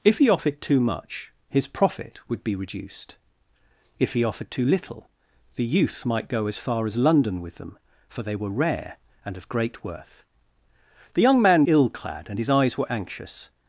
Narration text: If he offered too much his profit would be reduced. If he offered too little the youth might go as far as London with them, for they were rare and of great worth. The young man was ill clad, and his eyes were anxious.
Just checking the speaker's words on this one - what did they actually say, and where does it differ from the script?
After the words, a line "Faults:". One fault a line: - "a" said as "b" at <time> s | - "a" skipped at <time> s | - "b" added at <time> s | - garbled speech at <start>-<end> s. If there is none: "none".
If he offered too much his profit would be reduced. If he offered too little the youth might go as far as London with them, for they were rare and of great worth. The young man ill clad, and his eyes were anxious.
Faults:
- "was" skipped at 11.6 s